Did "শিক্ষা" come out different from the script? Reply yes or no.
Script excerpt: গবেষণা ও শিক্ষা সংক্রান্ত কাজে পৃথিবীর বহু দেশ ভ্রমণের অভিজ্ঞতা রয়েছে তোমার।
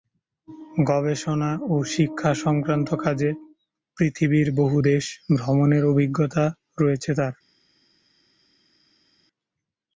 no